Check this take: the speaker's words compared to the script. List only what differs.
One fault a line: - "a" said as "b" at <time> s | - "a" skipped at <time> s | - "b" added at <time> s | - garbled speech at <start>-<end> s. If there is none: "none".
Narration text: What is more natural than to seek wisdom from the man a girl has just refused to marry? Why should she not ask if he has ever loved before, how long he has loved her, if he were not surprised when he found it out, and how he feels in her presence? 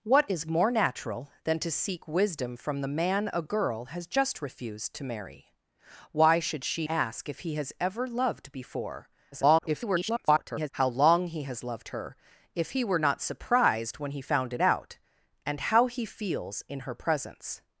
- "not" skipped at 6.9 s
- garbled speech at 9.3-10.7 s